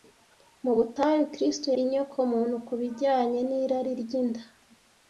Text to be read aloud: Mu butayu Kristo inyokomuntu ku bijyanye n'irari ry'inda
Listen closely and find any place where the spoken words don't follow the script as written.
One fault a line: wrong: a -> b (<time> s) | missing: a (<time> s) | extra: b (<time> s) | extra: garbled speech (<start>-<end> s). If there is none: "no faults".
no faults